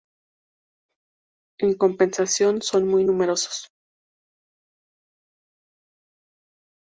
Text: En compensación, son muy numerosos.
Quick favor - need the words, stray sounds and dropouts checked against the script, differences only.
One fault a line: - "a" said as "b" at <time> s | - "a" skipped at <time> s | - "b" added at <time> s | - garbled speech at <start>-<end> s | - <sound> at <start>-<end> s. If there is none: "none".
none